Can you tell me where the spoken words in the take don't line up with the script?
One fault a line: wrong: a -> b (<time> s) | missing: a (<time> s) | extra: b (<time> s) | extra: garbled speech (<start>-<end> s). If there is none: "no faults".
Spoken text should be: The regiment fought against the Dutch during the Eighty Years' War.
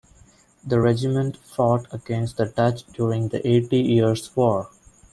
no faults